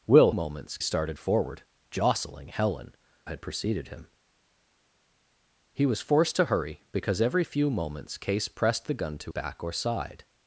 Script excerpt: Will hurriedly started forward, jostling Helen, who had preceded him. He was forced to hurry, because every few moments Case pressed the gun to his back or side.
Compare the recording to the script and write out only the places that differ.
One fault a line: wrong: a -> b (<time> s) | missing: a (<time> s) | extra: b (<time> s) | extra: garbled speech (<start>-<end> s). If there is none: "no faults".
wrong: hurriedly -> moments (0.3 s)
missing: who (3.0 s)
missing: his (9.3 s)